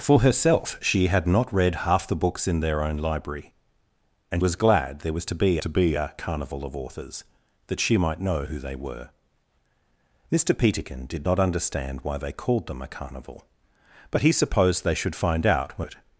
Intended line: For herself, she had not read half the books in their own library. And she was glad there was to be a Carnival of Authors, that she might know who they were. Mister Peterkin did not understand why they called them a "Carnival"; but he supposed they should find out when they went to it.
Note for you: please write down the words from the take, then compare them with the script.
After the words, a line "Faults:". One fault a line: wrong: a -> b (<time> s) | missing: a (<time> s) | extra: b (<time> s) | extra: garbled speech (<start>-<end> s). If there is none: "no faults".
For herself, she had not read half the books in their own library. And was glad there was to be to be a Carnival of Authors, that she might know who they were. Mister Peterkin did not understand why they called them a "Carnival"; but he supposed they should find out when it.
Faults:
missing: she (4.4 s)
extra: to be (5.6 s)
missing: they went to (15.9 s)